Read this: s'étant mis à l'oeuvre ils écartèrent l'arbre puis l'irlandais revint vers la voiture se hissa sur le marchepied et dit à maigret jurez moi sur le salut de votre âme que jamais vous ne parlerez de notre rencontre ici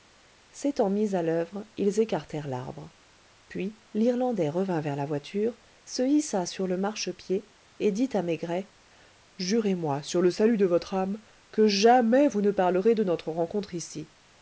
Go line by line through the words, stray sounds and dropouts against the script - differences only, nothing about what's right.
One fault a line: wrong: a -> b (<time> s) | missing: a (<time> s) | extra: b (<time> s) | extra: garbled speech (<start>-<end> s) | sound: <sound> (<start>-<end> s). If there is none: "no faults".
no faults